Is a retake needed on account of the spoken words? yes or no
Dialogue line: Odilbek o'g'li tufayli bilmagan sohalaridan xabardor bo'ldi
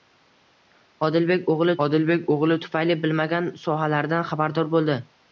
yes